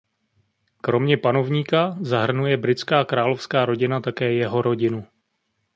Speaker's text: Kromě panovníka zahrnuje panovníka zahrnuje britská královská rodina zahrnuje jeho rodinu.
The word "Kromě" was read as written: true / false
true